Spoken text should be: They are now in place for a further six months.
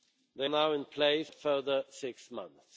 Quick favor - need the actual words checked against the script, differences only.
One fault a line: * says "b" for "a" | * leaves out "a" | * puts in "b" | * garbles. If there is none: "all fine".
* leaves out "are"
* leaves out "for"